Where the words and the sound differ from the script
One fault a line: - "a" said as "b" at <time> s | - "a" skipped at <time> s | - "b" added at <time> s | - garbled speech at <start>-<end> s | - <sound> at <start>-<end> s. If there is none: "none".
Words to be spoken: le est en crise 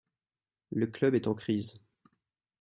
- "club" added at 0.9 s